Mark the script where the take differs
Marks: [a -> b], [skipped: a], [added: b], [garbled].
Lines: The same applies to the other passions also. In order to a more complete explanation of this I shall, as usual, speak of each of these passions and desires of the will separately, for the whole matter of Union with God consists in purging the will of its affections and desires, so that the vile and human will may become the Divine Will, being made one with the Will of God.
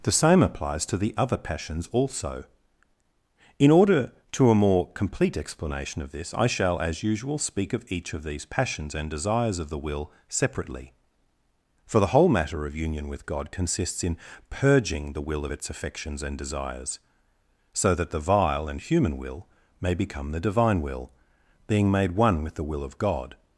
The same applies to the other passions also. In order to a more complete explanation of this I shall, as usual, speak of each of these passions and desires of the will separately, for the whole matter of Union with God consists in purging the will of its affections and desires, so that the vile and human will may become the Divine Will, being made one with the Will of God.